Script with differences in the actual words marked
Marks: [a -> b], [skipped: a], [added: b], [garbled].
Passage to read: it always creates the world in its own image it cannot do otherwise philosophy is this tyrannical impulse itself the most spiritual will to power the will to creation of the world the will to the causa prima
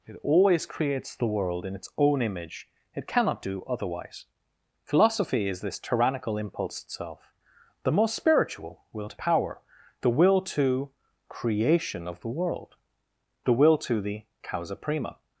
it always creates the world in its own image it cannot do otherwise philosophy is this tyrannical impulse itself the most spiritual will to power the will to creation of the world the will to the causa prima